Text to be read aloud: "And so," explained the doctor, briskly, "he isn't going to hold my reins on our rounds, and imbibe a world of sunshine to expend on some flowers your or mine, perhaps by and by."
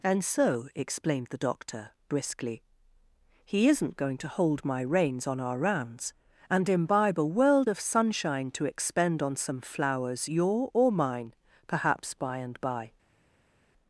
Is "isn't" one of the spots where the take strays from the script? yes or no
no